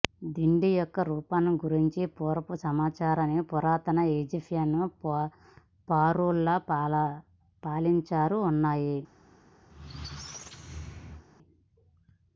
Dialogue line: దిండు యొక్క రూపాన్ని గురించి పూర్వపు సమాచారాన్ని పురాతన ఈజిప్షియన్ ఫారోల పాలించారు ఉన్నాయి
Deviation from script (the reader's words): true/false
false